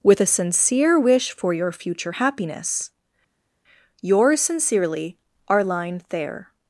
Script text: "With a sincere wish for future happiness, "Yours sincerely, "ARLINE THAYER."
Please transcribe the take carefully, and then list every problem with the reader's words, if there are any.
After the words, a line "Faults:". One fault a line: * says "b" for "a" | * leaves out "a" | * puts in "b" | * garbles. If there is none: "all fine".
"With a sincere wish for your future happiness, "Yours sincerely, "ARLINE THAYER."
Faults:
* puts in "your"